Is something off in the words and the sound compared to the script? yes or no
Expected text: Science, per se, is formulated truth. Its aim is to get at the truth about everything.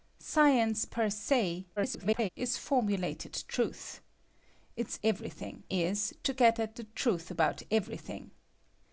yes